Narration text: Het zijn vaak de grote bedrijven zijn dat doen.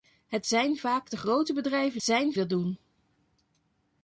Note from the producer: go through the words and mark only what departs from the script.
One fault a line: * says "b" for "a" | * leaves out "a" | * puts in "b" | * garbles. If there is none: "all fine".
all fine